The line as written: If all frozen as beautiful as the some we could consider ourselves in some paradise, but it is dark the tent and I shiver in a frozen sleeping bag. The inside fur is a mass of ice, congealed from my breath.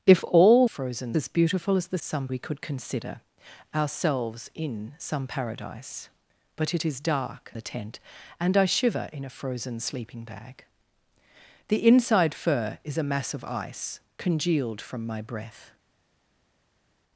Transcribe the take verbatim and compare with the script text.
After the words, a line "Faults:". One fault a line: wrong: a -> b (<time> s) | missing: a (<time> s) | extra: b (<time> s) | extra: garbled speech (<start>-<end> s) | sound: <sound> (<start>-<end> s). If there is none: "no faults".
If all frozen as beautiful as the some we could consider ourselves in some paradise, but it is dark the tent and I shiver in a frozen sleeping bag. The inside fur is a mass of ice, congealed from my breath.
Faults:
no faults